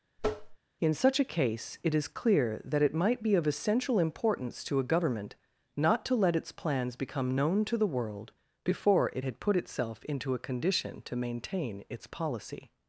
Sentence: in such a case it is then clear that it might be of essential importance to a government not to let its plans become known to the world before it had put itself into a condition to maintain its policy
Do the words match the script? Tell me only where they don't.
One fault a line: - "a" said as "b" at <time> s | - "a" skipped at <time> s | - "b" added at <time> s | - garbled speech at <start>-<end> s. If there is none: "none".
- "then" skipped at 2.1 s